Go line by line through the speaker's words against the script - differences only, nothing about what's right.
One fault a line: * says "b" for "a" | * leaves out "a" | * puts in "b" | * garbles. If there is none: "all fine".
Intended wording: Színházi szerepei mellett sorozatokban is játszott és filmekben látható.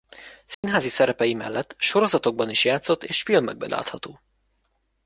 all fine